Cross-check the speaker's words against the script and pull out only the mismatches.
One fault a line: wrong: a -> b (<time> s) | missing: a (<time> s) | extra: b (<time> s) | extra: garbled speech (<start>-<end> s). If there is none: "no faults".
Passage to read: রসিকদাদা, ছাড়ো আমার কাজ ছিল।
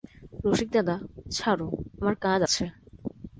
wrong: ছিল -> আছে (2.4 s)